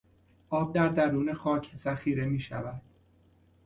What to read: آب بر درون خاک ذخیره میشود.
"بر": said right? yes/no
no